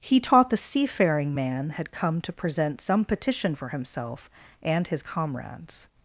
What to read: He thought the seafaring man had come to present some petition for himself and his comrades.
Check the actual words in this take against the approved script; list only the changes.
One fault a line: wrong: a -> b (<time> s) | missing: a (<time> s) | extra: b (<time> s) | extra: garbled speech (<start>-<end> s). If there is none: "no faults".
wrong: thought -> taught (0.2 s)